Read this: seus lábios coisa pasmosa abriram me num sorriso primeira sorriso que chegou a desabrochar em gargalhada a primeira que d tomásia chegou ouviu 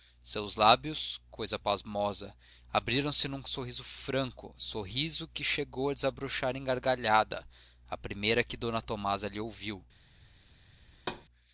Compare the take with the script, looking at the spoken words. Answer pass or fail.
fail